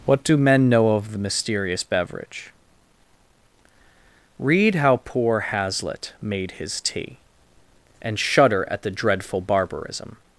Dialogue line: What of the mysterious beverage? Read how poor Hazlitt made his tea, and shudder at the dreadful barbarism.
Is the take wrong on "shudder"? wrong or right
right